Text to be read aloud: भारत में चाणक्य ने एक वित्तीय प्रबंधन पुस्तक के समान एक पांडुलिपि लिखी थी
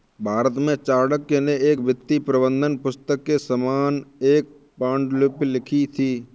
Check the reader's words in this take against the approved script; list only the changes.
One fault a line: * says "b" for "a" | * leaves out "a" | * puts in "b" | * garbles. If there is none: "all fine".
all fine